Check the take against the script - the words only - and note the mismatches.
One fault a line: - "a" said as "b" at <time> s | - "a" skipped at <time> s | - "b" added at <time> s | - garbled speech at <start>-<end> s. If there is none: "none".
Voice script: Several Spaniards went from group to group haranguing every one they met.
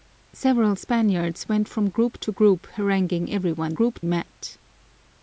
- "they" said as "group" at 3.7 s